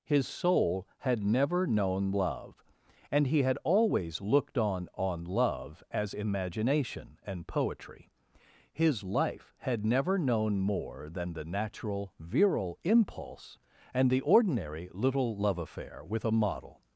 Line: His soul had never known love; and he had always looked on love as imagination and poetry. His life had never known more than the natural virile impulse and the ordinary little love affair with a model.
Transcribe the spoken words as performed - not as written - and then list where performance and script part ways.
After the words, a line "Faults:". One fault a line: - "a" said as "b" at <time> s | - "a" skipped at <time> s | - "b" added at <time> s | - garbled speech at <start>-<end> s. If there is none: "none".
His soul had never known love; and he had always looked on on love as imagination and poetry. His life had never known more than the natural virile impulse and the ordinary little love affair with a model.
Faults:
- "on" added at 4.9 s